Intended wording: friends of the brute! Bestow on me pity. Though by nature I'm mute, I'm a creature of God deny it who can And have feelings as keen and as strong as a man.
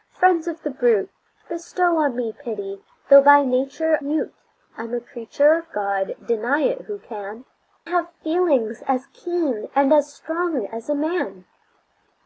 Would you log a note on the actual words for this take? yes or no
yes